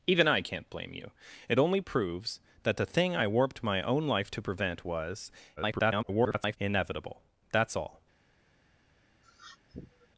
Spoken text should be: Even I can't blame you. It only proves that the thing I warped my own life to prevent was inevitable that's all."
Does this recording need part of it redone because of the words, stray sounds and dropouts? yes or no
yes